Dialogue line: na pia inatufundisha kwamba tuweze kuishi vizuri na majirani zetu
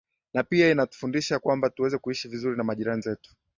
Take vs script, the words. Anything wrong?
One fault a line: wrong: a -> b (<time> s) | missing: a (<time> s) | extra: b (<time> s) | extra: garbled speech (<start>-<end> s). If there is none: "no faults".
no faults